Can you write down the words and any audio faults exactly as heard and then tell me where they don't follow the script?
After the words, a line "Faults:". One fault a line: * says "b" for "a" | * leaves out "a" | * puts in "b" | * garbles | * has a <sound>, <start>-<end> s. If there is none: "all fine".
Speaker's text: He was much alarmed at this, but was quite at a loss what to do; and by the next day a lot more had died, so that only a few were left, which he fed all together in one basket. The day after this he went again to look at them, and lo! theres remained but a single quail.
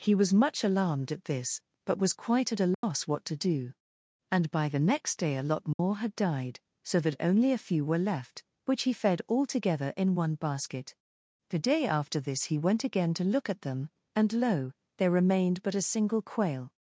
He was much alarmed at this, but was quite at a loss what to do; and by the next day a lot more had died, so that only a few were left, which he fed all together in one basket. The day after this he went again to look at them, and lo! there remained but a single quail.
Faults:
* has a dropout, 2.7-2.8 s
* has a dropout, 5.7-5.8 s
* says "there" for "theres"